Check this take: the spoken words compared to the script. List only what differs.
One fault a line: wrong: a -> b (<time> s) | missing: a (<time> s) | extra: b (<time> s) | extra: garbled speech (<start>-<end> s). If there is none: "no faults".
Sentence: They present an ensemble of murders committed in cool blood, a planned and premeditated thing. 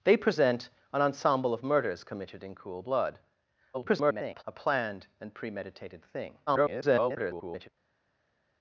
extra: garbled speech (3.7-4.4 s)
extra: garbled speech (6.5-7.7 s)